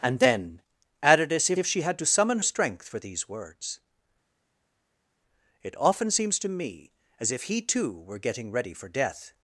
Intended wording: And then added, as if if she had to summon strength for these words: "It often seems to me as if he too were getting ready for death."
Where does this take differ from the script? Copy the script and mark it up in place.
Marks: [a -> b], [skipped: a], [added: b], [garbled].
And then added, as if if she had to summon strength for these words: "It often seems to me as if he too were getting ready for death."